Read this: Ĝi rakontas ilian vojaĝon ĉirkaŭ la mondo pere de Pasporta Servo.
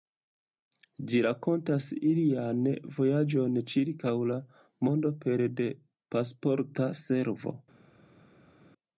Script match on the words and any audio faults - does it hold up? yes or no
yes